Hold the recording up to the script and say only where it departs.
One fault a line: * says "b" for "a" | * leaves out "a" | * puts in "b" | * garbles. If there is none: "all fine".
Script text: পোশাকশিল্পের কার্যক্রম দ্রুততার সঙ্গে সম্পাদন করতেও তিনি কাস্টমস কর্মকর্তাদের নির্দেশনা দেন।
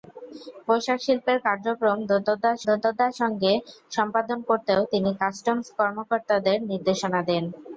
* puts in "দ্রুততার"